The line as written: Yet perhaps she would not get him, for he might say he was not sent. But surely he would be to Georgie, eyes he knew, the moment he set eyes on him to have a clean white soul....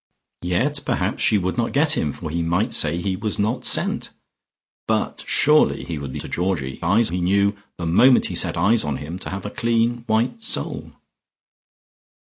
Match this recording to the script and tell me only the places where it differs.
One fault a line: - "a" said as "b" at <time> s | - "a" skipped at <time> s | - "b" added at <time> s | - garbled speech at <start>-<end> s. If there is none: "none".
none